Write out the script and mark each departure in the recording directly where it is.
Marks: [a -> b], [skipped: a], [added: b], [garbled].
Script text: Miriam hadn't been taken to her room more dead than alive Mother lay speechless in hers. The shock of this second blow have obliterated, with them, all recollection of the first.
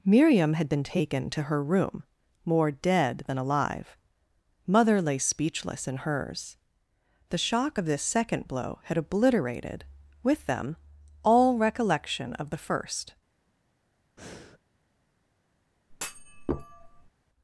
Miriam [hadn't -> had] been taken to her room more dead than alive Mother lay speechless in hers. The shock of this second blow [have -> had] obliterated, with them, all recollection of the first.